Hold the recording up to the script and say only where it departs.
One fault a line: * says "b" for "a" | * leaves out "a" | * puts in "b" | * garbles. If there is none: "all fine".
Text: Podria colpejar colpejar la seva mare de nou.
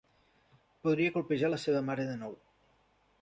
* leaves out "colpejar"